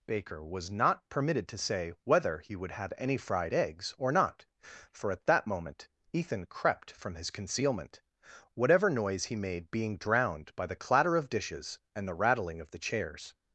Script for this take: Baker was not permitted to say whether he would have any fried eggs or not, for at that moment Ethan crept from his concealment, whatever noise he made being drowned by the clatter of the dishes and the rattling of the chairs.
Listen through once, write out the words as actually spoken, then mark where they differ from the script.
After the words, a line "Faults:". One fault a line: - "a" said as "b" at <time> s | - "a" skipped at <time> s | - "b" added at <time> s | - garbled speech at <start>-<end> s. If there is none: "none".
Baker was not permitted to say whether he would have any fried eggs or not, for at that moment Ethan crept from his concealment, whatever noise he made being drowned by the clatter of dishes and the rattling of the chairs.
Faults:
- "the" skipped at 11.3 s